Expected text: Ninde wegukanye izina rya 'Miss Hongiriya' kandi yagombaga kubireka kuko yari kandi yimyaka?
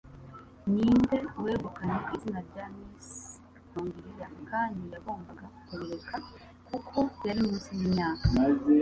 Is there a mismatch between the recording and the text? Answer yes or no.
yes